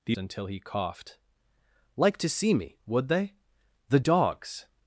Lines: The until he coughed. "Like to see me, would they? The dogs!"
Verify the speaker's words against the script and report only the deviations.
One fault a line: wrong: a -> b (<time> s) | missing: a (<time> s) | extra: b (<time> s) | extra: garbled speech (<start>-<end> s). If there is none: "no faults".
no faults